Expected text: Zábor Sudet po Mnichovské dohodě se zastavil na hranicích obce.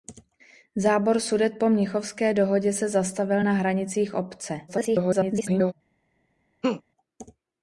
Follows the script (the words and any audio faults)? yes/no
no